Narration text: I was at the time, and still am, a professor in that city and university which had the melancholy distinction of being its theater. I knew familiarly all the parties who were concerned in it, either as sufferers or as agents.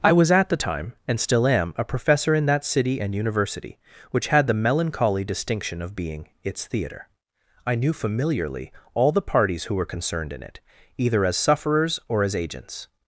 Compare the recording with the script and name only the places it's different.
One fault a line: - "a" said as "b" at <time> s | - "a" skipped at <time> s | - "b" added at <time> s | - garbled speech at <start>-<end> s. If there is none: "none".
none